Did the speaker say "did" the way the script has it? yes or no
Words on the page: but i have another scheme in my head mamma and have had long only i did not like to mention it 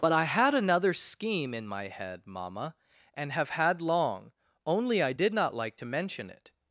yes